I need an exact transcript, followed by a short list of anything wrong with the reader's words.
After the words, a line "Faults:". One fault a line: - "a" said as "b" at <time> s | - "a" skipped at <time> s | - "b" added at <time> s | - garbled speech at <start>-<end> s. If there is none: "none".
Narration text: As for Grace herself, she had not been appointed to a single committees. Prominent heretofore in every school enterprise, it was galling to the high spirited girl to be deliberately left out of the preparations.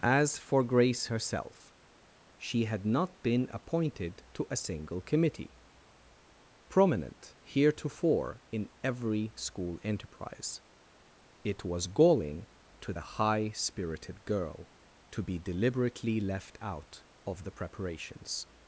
As for Grace herself, she had not been appointed to a single committee. Prominent heretofore in every school enterprise, it was galling to the high spirited girl to be deliberately left out of the preparations.
Faults:
- "committees" said as "committee" at 5.0 s